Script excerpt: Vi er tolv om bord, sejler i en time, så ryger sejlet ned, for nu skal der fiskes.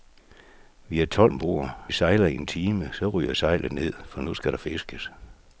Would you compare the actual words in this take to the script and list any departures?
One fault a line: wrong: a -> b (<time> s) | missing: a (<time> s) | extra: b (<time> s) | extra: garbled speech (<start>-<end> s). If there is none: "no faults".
no faults